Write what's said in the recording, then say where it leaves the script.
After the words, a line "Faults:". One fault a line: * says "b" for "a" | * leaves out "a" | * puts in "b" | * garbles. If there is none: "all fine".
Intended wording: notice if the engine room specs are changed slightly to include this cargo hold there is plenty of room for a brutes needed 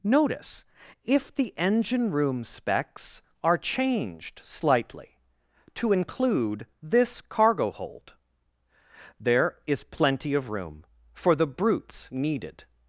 notice if the engine room specs are changed slightly to include this cargo hold there is plenty of room for the brutes needed
Faults:
* says "the" for "a"